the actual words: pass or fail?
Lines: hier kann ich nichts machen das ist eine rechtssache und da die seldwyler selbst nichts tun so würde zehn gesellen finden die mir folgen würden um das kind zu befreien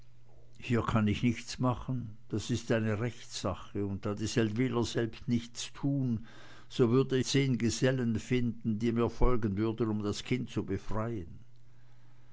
pass